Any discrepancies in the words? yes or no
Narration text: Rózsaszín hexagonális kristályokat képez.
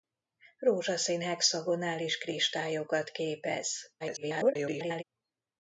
yes